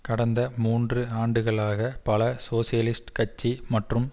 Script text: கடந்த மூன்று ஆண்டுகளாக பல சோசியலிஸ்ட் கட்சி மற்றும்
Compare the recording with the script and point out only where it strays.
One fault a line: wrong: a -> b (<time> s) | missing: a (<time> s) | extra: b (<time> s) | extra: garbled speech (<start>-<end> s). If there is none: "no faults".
no faults